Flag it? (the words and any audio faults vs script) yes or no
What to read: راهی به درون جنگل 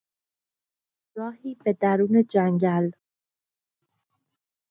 no